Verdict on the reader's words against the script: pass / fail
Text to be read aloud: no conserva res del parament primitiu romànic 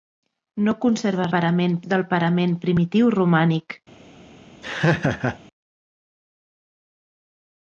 fail